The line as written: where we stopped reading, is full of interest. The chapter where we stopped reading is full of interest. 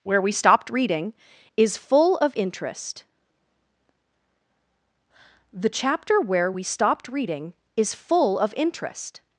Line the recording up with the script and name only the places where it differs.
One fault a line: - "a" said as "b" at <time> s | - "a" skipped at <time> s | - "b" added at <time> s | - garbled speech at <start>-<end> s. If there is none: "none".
none